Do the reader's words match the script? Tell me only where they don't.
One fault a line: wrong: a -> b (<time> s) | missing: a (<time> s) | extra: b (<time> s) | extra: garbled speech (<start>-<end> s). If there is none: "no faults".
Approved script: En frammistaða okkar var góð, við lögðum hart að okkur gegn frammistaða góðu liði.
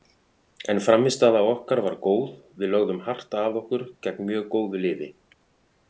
wrong: frammistaða -> mjög (4.3 s)